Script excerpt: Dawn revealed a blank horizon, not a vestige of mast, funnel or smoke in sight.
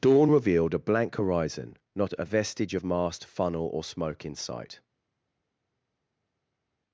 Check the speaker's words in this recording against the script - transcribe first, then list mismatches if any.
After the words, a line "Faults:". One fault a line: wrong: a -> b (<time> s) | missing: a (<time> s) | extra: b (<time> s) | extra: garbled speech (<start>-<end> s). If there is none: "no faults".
Dawn revealed a blank horizon, not a vestige of mast, funnel or smoke in sight.
Faults:
no faults